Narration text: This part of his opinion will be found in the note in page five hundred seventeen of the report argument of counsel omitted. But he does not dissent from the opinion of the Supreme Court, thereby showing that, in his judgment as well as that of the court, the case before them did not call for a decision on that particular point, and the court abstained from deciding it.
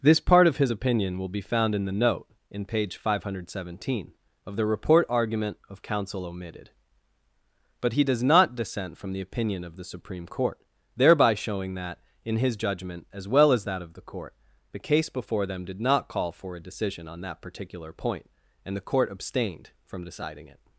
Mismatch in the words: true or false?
false